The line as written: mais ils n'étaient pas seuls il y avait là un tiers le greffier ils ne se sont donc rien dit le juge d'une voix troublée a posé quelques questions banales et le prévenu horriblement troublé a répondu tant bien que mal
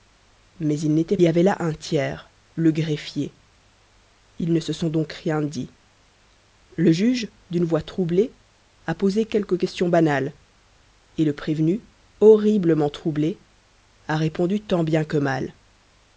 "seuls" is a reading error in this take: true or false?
true